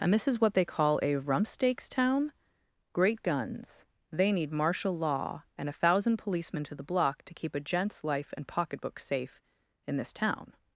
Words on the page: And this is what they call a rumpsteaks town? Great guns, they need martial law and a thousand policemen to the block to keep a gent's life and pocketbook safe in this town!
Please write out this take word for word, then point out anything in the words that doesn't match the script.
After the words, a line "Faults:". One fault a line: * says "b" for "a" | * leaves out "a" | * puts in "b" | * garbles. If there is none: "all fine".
And this is what they call a rumpsteaks town? Great guns, they need martial law and a thousand policemen to the block to keep a gent's life and pocketbook safe in this town!
Faults:
all fine